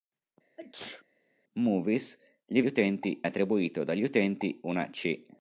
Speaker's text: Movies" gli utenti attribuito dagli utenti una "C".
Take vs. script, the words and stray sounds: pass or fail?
fail